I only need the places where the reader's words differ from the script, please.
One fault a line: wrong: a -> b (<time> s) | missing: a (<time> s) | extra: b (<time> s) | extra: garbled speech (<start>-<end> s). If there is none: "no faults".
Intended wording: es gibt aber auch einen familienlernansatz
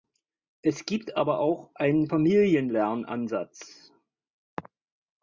no faults